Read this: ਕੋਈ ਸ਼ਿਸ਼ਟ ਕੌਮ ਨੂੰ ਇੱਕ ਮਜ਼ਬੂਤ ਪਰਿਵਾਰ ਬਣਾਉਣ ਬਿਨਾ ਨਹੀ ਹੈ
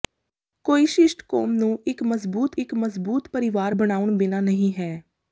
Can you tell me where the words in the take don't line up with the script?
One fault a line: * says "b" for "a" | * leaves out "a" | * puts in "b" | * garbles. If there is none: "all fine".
* puts in "ਇੱਕ ਮਜ਼ਬੂਤ"